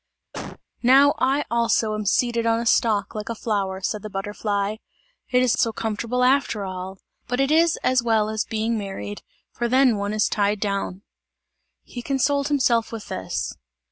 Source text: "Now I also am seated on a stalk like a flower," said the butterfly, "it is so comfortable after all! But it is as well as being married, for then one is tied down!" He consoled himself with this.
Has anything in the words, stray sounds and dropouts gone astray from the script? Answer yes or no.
yes